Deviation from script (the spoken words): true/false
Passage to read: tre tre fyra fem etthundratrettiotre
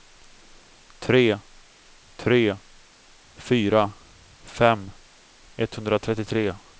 false